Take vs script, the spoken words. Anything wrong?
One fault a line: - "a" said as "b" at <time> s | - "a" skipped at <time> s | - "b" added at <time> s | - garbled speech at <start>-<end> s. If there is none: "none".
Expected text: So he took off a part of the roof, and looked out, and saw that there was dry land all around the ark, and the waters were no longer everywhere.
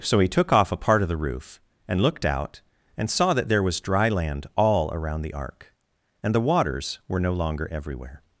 none